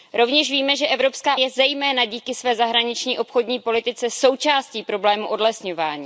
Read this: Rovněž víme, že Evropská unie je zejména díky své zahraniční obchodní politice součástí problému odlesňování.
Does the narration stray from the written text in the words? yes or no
yes